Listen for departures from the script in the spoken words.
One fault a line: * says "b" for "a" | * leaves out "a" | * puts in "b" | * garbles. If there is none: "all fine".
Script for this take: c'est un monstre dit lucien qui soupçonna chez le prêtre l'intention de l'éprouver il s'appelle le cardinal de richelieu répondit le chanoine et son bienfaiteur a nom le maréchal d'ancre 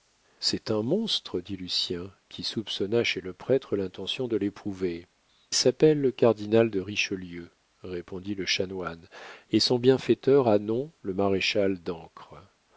* leaves out "il"